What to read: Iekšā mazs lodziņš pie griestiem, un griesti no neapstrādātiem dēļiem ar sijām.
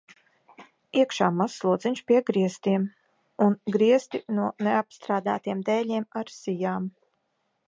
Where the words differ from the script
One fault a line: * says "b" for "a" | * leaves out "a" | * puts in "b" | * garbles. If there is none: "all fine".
all fine